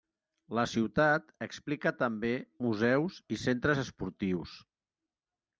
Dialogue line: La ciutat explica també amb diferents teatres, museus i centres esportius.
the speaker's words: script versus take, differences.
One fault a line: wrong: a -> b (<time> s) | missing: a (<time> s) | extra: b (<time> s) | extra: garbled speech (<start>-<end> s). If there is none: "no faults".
missing: amb diferents teatres (2.3 s)